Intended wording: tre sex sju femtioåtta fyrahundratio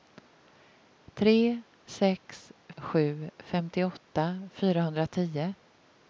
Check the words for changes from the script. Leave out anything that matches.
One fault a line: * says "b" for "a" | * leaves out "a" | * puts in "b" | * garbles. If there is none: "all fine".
all fine